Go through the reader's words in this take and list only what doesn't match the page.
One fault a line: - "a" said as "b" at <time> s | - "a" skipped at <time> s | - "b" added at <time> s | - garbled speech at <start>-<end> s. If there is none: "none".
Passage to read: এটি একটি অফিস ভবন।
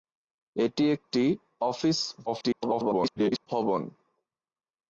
- garbled speech at 2.3-3.5 s